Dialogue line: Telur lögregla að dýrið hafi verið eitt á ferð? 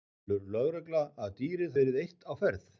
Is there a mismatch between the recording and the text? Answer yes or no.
yes